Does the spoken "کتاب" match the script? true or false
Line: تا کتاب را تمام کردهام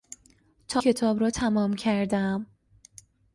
true